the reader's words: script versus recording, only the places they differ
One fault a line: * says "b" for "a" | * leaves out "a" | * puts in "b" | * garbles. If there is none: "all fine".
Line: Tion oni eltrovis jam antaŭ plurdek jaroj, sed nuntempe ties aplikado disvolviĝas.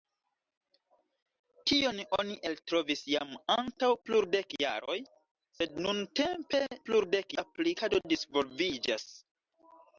* says "plurdek" for "ties"